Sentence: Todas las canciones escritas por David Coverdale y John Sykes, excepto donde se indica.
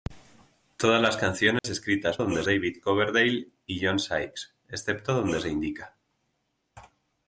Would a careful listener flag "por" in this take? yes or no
yes